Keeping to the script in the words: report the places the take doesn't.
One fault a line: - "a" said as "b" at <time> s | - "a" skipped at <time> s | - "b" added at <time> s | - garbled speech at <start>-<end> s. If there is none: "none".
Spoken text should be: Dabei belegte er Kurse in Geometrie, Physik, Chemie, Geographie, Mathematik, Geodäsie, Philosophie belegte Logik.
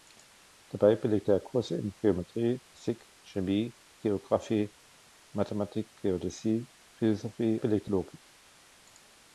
none